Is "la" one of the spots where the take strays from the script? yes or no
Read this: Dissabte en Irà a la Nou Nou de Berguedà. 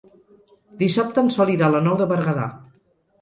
no